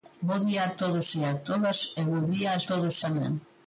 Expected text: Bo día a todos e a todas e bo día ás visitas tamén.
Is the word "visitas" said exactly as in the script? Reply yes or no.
no